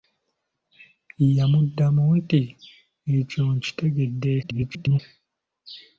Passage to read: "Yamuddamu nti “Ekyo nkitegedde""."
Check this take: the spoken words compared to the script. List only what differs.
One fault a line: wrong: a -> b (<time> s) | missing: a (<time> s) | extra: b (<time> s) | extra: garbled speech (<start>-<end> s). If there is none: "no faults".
extra: garbled speech (4.4-5.0 s)